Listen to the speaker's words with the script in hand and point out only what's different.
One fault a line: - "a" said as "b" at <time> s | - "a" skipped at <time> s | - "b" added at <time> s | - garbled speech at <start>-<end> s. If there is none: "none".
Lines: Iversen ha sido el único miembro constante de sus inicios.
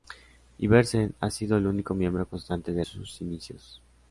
none